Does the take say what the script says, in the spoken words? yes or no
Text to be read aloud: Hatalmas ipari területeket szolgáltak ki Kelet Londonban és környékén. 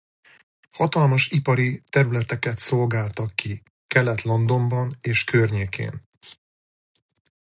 yes